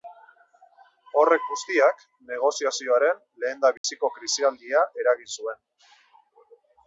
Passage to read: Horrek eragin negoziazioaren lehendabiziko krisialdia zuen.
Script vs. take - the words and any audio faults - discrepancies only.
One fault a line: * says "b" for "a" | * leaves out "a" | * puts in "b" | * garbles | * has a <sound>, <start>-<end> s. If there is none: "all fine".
* says "guztiak" for "eragin"
* has a dropout, 3.8-3.8 s
* puts in "eragin"